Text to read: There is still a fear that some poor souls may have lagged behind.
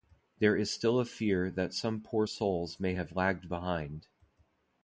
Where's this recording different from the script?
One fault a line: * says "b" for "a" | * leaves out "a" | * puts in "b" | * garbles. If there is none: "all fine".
all fine